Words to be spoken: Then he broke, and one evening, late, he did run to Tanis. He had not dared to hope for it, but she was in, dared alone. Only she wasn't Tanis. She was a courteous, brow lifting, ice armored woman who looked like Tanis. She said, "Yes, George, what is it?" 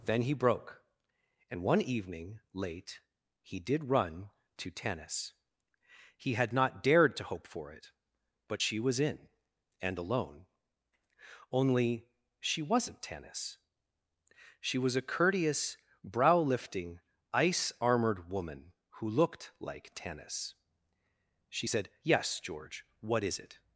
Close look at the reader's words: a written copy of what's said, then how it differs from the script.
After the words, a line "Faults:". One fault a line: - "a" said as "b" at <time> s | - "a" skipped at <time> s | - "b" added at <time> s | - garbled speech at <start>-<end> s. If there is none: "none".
Then he broke, and one evening, late, he did run to Tanis. He had not dared to hope for it, but she was in, and alone. Only she wasn't Tanis. She was a courteous, brow lifting, ice armored woman who looked like Tanis. She said, "Yes, George, what is it?"
Faults:
- "dared" said as "and" at 9.8 s